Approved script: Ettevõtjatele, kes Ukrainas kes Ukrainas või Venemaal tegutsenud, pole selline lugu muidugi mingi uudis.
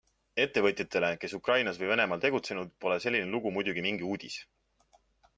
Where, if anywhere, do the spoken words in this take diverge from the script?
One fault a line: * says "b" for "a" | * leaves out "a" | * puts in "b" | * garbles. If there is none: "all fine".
* leaves out "kes Ukrainas"